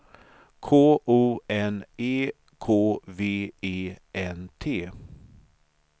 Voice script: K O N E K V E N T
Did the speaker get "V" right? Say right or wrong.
right